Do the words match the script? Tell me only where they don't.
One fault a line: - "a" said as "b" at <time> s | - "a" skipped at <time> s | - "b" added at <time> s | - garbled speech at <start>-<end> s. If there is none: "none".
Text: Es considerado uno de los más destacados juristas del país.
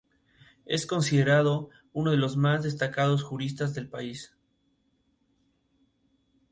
none